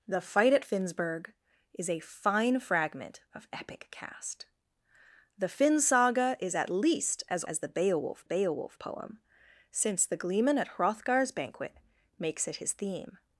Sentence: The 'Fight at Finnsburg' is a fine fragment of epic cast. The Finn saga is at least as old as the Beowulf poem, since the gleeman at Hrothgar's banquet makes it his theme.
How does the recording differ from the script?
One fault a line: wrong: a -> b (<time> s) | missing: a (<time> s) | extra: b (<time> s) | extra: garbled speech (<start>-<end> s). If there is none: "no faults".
missing: old (7.5 s)
extra: Beowulf (8.2 s)